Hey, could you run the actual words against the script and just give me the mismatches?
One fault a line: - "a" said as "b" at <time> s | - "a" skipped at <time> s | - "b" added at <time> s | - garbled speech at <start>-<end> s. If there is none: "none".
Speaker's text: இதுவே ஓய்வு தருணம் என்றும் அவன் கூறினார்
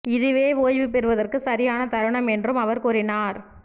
- "பெறுவதற்கு சரியான" added at 0.9 s
- "அவன்" said as "அவர்" at 2.6 s